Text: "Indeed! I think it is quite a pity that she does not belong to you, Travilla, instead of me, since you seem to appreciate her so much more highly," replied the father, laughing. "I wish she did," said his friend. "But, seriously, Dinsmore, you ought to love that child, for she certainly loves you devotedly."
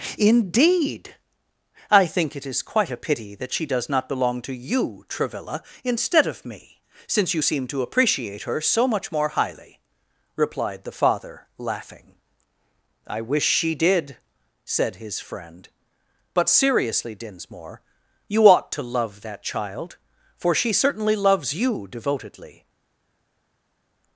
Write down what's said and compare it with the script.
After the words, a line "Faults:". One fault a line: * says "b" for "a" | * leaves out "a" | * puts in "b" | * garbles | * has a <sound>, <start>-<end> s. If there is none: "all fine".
"Indeed! I think it is quite a pity that she does not belong to you, Travilla, instead of me, since you seem to appreciate her so much more highly," replied the father, laughing. "I wish she did," said his friend. "But, seriously, Dinsmore, you ought to love that child, for she certainly loves you devotedly."
Faults:
all fine